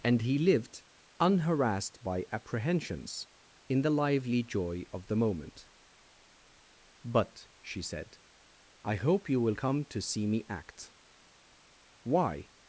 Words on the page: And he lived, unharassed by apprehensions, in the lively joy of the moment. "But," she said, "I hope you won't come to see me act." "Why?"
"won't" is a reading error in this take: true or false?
true